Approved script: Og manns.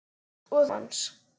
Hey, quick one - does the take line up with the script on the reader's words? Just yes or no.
yes